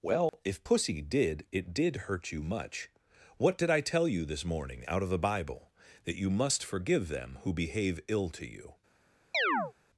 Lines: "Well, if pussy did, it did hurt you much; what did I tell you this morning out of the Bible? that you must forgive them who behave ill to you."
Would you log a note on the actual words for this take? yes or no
no